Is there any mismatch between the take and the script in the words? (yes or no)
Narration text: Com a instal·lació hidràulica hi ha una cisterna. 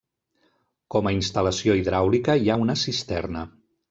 no